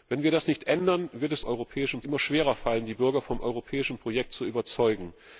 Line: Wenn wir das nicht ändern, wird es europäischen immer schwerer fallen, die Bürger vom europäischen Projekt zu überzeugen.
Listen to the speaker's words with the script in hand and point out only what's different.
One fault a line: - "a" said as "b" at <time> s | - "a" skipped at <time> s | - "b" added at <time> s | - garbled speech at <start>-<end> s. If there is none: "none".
none